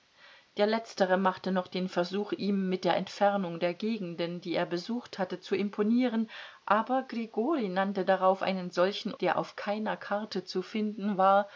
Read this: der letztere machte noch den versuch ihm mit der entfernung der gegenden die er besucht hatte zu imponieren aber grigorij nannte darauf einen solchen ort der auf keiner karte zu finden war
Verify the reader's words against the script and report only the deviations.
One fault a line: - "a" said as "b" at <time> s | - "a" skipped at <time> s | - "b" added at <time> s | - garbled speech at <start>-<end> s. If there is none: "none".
- "ort" skipped at 9.1 s